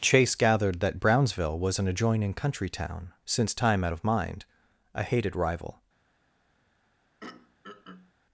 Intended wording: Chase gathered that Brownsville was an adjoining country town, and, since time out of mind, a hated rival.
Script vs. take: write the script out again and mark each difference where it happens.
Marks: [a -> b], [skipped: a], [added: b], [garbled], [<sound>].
Chase gathered that Brownsville was an adjoining country town, [skipped: and,] since time out of mind, a hated rival. [throat clearing]